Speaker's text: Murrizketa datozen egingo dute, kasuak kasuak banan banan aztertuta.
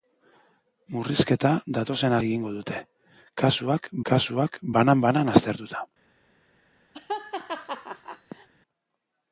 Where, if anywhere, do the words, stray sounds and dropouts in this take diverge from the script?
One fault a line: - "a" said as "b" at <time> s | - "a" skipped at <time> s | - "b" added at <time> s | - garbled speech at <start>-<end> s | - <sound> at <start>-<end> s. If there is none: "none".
- laugh at 6.9-8.5 s